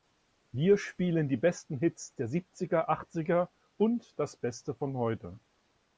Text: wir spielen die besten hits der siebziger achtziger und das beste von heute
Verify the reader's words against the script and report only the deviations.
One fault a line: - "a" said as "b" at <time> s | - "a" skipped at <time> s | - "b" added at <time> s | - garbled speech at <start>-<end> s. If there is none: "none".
none